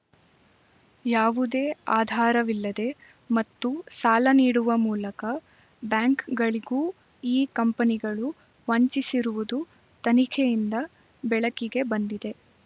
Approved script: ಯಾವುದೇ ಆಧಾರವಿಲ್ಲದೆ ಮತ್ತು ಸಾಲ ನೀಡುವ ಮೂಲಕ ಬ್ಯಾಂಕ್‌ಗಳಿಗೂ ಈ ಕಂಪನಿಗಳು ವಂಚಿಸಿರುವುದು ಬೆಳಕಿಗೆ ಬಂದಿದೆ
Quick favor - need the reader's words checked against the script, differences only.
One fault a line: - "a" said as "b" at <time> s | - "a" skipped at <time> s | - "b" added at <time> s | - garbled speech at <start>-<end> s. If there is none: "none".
- "ತನಿಖೆಯಿಂದ" added at 10.0 s